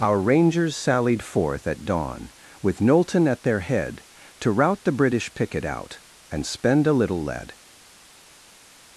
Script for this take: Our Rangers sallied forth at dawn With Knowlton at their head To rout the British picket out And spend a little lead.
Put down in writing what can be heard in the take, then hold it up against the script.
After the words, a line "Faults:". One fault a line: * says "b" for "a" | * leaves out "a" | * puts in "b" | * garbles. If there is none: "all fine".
Our Rangers sallied forth at dawn With Knowlton at their head To rout the British picket out And spend a little lead.
Faults:
all fine